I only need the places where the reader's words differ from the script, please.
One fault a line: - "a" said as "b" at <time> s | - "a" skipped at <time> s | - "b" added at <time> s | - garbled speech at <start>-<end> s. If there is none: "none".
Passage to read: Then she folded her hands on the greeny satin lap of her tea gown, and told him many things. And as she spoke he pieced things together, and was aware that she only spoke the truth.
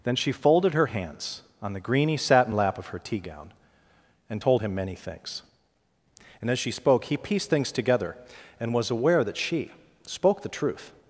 - "only" skipped at 9.7 s